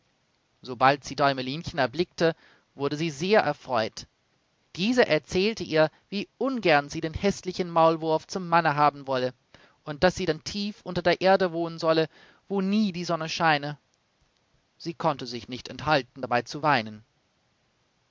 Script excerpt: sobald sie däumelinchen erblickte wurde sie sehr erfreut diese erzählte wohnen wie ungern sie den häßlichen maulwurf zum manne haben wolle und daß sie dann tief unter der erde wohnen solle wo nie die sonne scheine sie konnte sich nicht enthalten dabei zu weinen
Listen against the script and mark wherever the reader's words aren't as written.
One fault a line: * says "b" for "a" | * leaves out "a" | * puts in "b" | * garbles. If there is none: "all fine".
* says "ihr" for "wohnen"